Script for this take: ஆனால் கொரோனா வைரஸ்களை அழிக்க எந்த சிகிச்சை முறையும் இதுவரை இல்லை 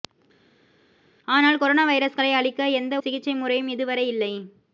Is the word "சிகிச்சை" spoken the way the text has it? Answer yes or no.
yes